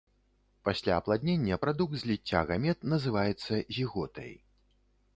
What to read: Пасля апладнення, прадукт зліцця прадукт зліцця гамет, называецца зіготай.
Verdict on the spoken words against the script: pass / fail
fail